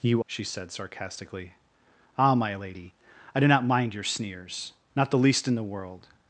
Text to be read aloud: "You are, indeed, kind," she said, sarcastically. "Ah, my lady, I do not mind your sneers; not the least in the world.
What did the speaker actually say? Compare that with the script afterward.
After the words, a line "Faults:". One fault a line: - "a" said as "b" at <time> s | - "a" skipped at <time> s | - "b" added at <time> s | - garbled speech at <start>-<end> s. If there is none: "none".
"You," she said, sarcastically. "Ah, my lady, I do not mind your sneers; not the least in the world.
Faults:
- "are indeed kind" skipped at 0.2 s